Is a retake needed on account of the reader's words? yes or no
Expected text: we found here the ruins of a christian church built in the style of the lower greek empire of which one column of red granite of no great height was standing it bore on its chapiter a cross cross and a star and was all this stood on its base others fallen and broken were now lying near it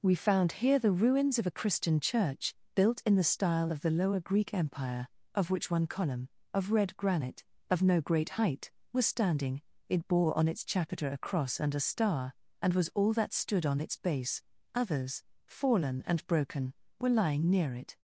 yes